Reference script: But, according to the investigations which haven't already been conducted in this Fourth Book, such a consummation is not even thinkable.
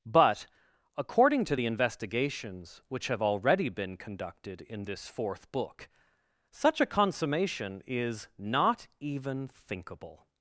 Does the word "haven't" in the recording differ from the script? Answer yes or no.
yes